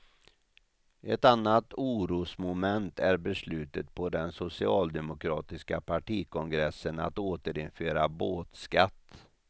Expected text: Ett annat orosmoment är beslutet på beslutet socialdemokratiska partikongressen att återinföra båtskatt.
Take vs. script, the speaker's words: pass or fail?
fail